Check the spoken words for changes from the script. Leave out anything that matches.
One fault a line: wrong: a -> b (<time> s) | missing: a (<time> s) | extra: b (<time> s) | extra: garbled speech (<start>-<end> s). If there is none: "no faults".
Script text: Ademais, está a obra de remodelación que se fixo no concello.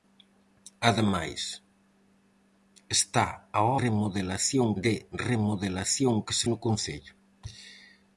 wrong: obra -> remodelación (3.8 s)
missing: fixo (6.5 s)